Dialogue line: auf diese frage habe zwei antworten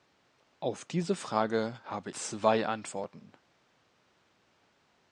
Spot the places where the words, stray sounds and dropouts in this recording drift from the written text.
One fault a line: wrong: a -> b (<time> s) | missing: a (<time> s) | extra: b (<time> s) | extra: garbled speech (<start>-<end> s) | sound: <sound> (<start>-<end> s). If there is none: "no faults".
no faults